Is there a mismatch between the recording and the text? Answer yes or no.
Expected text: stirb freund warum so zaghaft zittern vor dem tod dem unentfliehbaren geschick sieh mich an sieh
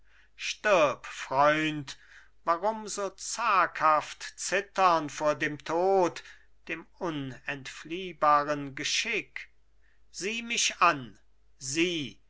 no